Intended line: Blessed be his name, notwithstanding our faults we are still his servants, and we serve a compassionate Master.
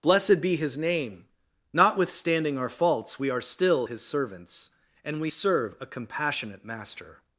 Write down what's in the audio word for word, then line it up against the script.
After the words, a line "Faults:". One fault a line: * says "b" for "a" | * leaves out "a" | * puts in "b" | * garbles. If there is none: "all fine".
Blessed be his name, notwithstanding our faults we are still his servants, and we serve a compassionate Master.
Faults:
all fine